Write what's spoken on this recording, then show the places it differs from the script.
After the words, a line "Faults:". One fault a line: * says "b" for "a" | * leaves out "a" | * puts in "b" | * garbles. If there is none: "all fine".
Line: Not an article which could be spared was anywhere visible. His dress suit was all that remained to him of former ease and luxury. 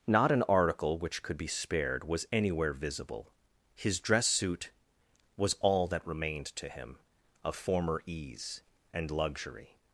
Not an article which could be spared was anywhere visible. His dress suit was all that remained to him of former ease and luxury.
Faults:
all fine